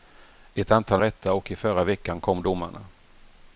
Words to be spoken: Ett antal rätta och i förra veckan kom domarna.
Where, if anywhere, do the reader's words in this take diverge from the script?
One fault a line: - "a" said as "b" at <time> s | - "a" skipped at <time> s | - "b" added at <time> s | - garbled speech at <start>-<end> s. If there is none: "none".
none